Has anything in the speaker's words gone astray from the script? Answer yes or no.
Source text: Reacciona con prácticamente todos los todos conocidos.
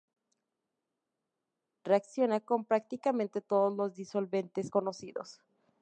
yes